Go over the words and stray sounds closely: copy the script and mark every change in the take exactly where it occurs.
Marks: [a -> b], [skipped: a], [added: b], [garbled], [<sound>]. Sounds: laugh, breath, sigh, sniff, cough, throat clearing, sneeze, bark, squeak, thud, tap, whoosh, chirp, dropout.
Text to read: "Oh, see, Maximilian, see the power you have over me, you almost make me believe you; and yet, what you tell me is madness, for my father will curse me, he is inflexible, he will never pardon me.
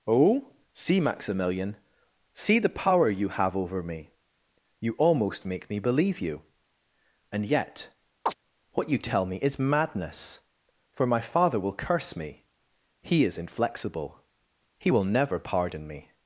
"Oh, see, Maximilian, see the power you have over me, you almost make me believe you; and yet, [chirp] what you tell me is madness, for my father will curse me, he is inflexible, he will never pardon me.